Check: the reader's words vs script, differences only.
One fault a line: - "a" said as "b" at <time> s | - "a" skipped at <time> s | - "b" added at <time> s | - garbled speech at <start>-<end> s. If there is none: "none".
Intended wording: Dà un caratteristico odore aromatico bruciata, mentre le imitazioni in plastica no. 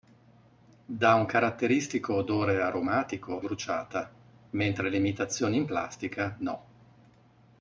none